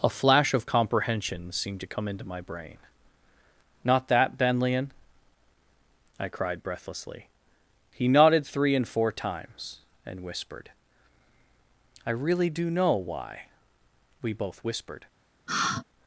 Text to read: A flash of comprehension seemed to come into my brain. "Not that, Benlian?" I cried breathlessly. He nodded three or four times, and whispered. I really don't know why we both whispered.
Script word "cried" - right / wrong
right